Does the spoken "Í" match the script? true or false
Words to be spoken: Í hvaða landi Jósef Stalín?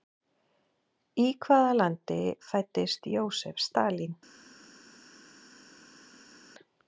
true